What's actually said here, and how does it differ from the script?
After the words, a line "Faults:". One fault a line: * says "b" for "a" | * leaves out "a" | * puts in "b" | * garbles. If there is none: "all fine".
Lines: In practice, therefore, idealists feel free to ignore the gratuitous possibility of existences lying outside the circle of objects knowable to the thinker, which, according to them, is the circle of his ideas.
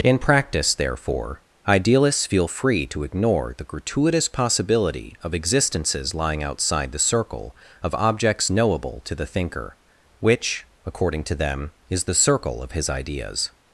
In practice, therefore, idealists feel free to ignore the gratuitous possibility of existences lying outside the circle of objects knowable to the thinker, which, according to them, is the circle of his ideas.
Faults:
all fine